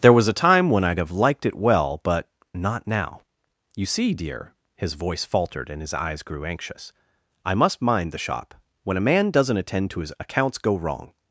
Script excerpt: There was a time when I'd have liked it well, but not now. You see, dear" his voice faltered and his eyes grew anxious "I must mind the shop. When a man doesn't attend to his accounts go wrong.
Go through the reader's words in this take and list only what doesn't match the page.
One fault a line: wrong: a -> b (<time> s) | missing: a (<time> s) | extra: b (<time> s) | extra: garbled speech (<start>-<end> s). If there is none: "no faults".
no faults